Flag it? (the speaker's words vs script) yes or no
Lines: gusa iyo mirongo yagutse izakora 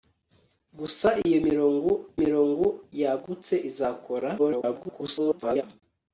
yes